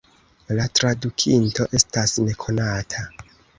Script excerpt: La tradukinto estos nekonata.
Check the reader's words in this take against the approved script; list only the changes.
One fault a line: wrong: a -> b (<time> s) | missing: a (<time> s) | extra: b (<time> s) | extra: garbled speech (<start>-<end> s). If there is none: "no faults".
wrong: estos -> estas (1.8 s)